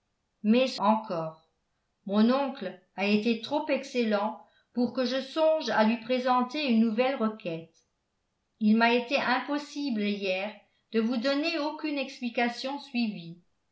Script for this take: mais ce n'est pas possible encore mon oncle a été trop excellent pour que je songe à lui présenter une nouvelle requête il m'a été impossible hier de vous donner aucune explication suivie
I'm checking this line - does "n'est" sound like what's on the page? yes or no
no